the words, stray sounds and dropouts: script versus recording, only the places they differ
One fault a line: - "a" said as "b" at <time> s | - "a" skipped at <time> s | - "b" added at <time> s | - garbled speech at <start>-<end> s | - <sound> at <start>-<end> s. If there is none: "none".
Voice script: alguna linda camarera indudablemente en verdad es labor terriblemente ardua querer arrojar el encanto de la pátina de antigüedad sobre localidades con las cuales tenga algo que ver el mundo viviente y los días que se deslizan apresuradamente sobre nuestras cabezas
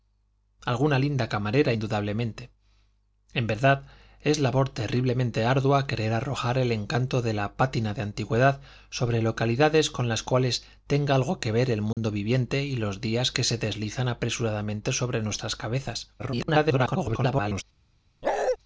- dropout at 11.9-12.0 s
- garbled speech at 16.2-17.6 s
- bark at 18.2-18.6 s